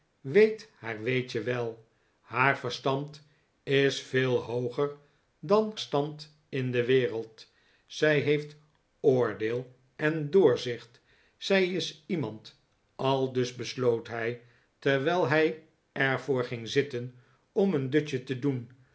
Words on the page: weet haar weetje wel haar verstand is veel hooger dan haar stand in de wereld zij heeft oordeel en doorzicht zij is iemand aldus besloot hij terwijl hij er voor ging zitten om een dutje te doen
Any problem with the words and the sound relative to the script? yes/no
yes